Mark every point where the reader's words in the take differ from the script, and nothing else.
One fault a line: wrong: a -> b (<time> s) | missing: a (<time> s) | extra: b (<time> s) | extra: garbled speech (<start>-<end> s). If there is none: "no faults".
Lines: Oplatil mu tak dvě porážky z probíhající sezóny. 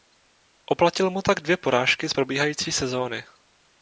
no faults